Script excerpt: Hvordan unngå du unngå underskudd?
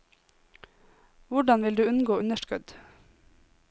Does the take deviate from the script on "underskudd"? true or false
false